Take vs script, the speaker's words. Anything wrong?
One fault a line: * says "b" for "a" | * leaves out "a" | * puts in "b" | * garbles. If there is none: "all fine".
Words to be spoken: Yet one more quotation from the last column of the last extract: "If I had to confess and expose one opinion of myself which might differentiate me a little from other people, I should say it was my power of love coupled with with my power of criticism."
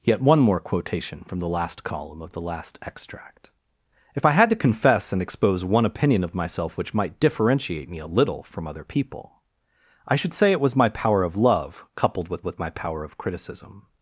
all fine